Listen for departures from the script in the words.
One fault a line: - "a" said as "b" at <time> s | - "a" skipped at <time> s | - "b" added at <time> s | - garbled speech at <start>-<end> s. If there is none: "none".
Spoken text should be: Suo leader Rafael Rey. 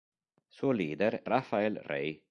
none